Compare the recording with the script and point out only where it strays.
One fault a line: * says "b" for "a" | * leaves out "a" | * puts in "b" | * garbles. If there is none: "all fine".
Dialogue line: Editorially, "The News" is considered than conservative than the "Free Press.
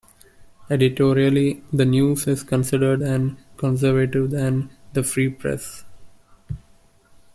all fine